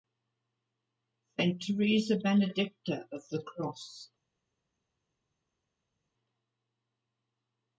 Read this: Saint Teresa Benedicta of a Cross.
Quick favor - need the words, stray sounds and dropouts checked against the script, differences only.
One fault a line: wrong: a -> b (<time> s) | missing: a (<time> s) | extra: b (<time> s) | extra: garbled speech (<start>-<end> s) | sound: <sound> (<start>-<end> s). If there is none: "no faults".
wrong: a -> the (3.3 s)